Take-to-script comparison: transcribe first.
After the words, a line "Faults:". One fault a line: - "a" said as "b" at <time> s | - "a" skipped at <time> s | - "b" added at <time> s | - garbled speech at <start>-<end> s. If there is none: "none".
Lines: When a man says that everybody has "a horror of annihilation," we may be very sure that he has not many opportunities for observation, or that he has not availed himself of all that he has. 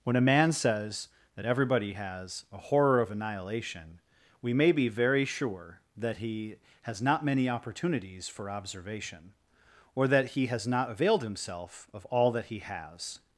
When a man says that everybody has "a horror of annihilation," we may be very sure that he has not many opportunities for observation, or that he has not availed himself of all that he has.
Faults:
none